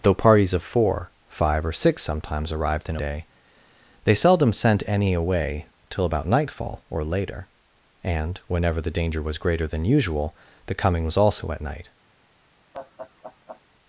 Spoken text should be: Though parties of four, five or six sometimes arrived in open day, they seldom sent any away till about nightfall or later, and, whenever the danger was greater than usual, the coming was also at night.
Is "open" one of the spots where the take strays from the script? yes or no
yes